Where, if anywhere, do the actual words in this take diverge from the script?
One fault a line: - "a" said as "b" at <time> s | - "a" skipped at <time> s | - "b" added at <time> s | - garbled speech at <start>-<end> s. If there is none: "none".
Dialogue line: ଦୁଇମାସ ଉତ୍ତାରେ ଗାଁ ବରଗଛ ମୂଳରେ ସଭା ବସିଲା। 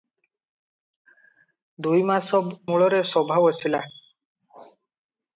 - "ଉତ୍ତାରେ ଗାଁ ବରଗଛ" skipped at 2.4 s